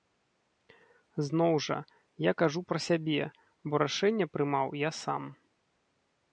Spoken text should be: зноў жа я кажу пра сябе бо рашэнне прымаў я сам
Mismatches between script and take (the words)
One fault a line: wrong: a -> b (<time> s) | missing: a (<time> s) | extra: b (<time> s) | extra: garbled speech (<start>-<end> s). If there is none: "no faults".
no faults